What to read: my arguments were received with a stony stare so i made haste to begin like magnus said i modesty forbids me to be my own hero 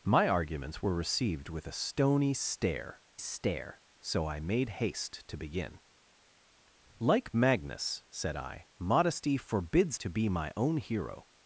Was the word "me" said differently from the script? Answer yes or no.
yes